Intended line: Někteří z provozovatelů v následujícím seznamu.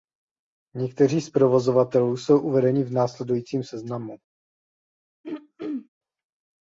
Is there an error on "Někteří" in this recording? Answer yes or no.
no